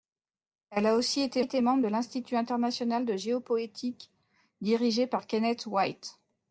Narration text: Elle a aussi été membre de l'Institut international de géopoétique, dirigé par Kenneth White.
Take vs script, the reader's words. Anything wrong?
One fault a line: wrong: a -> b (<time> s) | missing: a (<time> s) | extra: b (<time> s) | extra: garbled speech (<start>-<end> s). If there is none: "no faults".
extra: été (1.4 s)